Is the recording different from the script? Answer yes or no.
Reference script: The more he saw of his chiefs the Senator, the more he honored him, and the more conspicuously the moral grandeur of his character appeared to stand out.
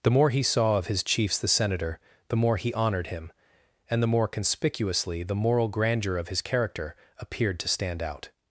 no